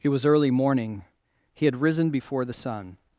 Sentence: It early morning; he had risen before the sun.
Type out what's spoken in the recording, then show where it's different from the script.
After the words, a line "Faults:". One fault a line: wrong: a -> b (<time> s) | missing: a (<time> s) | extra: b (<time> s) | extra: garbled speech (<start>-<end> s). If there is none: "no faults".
It was early morning; he had risen before the sun.
Faults:
extra: was (0.1 s)